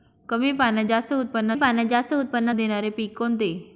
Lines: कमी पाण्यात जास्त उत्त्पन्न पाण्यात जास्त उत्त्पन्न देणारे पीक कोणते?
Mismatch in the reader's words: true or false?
false